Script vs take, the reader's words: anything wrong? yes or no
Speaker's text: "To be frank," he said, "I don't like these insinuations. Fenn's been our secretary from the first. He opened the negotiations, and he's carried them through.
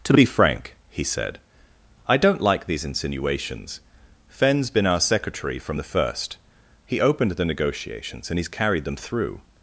no